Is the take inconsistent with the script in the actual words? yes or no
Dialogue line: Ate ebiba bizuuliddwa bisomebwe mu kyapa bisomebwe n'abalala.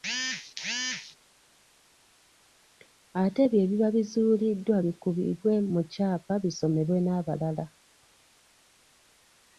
yes